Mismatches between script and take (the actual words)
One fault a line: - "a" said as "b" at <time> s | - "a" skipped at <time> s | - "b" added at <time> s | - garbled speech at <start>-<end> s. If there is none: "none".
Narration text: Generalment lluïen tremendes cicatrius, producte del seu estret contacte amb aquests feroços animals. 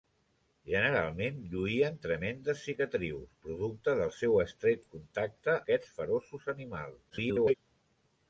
- "amb" skipped at 5.5 s
- garbled speech at 7.1-7.5 s